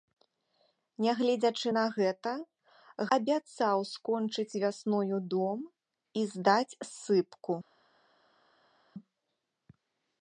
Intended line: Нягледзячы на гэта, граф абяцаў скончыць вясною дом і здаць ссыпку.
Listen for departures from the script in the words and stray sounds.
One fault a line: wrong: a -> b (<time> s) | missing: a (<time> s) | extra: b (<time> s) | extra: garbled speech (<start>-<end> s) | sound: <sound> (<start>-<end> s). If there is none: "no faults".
missing: граф (2.3 s)